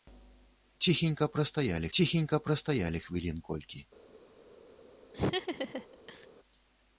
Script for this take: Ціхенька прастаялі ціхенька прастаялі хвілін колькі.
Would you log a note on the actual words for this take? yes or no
no